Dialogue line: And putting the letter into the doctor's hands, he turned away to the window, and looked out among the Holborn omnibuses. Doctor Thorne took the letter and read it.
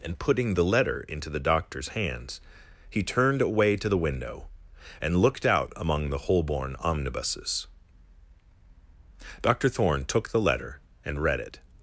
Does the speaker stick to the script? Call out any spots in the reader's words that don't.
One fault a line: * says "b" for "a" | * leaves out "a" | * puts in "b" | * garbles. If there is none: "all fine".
all fine